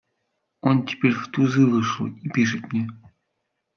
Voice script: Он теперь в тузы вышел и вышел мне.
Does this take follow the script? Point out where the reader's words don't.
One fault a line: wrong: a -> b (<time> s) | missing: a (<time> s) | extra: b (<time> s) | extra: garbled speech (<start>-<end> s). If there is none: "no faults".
wrong: вышел -> пишет (2.3 s)